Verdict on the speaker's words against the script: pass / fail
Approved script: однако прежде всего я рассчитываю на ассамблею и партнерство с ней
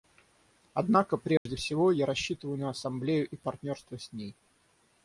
pass